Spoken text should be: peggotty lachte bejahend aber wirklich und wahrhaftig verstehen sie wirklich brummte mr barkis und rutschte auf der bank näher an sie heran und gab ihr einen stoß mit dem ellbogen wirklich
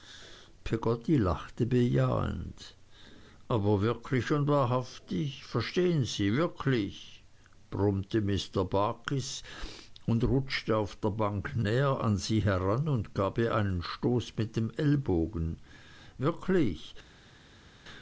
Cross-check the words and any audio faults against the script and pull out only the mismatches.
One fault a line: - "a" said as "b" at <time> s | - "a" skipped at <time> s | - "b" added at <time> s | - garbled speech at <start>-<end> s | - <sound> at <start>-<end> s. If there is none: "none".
none